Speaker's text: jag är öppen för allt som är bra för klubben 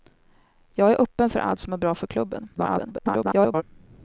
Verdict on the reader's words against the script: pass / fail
fail